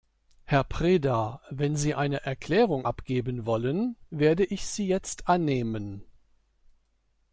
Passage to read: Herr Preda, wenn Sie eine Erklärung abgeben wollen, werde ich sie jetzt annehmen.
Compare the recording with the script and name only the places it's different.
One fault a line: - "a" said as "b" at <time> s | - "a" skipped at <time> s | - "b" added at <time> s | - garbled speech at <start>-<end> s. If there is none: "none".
none